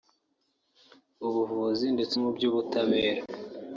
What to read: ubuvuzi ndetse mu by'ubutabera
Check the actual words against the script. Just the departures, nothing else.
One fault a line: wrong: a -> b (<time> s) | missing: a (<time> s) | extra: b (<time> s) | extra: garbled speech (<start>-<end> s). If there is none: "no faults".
no faults